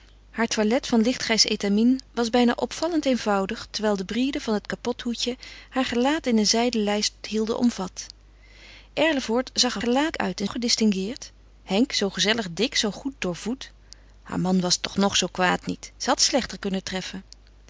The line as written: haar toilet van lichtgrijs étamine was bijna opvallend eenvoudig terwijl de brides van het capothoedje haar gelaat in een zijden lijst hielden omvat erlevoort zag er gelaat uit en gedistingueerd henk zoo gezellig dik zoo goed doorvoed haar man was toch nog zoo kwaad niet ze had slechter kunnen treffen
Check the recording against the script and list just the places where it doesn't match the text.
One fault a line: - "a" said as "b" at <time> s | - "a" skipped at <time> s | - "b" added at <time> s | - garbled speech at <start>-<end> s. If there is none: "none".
none